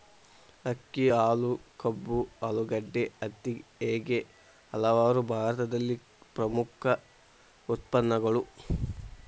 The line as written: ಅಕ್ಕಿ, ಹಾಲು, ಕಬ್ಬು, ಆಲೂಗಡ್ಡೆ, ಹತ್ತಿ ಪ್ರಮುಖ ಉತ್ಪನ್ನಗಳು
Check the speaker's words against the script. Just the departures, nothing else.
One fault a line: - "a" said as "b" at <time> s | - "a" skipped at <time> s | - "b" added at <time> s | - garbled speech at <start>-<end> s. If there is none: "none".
- "ಹೇಗೆ ಹಲವಾರು ಭಾರತದಲ್ಲಿ" added at 3.8 s